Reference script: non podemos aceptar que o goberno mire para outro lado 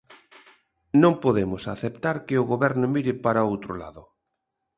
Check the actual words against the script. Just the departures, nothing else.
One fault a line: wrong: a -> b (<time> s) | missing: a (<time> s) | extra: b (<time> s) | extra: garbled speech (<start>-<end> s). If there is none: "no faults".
no faults